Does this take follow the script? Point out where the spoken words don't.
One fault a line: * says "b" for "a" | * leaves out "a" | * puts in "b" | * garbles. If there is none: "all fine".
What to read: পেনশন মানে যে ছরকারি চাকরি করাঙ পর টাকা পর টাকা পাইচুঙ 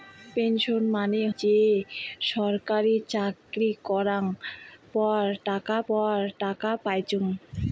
all fine